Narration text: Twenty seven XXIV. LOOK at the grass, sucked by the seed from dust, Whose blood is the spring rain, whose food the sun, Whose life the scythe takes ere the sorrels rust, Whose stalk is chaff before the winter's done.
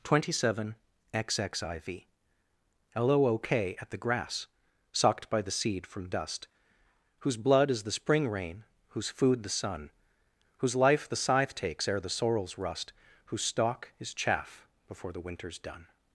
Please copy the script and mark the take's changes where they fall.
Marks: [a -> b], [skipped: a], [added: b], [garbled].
Twenty seven XXIV. LOOK at the grass, sucked by the seed from dust, Whose blood is the spring rain, whose food the sun, Whose life the scythe takes ere the sorrels rust, Whose stalk is chaff before the winter's done.